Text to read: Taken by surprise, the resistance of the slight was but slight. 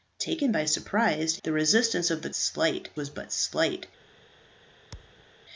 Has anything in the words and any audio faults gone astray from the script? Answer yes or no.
yes